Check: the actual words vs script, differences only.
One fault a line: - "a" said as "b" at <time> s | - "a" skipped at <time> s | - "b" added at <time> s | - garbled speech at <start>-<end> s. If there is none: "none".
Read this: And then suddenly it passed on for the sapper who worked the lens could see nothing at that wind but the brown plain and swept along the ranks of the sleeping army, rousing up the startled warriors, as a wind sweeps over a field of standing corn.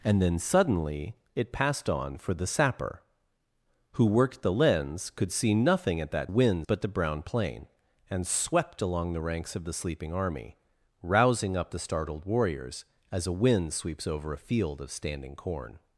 none